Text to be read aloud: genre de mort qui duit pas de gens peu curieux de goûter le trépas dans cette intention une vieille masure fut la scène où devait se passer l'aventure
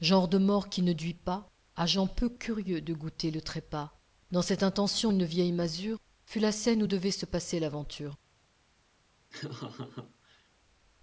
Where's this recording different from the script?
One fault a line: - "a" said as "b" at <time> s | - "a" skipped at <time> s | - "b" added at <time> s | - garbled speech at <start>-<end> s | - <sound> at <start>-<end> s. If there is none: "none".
- "ne" added at 0.8 s
- "de" said as "à" at 1.8 s
- laugh at 9.3-10.5 s